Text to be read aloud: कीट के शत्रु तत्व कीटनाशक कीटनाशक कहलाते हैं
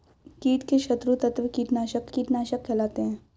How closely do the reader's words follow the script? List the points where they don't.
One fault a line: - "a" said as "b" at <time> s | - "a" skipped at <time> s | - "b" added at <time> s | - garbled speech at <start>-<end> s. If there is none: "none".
none